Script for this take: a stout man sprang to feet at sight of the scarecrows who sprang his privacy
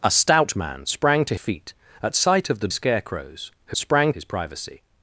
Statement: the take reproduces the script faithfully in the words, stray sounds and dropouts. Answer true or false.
true